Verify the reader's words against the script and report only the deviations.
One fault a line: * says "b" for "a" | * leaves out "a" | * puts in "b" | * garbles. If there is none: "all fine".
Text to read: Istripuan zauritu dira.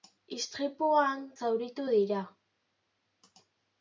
all fine